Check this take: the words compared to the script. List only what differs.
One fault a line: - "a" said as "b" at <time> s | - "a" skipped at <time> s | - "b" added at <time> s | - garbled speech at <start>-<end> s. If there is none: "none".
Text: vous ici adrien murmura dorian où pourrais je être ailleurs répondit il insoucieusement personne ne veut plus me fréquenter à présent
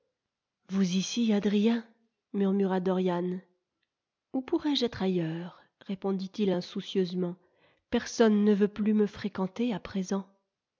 none